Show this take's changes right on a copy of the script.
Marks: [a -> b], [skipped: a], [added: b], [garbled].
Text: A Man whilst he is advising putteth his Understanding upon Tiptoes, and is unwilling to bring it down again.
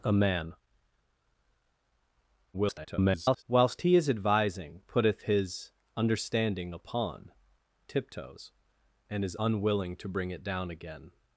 A Man [garbled] whilst he is advising putteth his Understanding upon Tiptoes, and is unwilling to bring it down again.